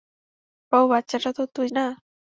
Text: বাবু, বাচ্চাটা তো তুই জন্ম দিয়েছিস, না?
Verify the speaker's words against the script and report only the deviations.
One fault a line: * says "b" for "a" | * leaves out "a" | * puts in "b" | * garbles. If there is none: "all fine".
* leaves out "জন্ম দিয়েছিস"